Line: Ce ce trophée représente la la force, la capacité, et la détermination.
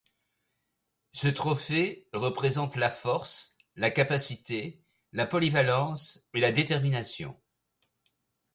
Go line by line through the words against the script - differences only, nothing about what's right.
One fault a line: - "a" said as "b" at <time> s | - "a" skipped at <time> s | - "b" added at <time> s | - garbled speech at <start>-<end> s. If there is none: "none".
- "ce" skipped at 1.3 s
- "force" added at 2.9 s
- "force" said as "capacité" at 3.9 s
- "capacité" said as "polyvalence" at 5.3 s